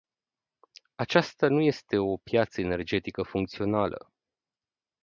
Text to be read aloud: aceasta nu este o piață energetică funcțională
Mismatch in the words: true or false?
false